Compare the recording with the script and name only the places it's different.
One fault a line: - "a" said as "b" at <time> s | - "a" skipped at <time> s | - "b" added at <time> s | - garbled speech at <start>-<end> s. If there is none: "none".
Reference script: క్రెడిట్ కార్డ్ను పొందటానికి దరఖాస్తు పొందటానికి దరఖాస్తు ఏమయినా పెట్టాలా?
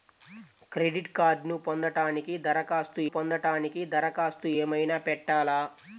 none